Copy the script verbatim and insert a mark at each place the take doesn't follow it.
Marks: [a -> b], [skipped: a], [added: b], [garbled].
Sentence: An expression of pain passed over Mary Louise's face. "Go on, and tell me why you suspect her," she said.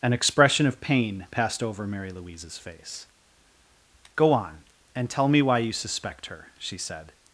An expression of pain passed over Mary Louise's face. "Go on, and tell me why you suspect her," she said.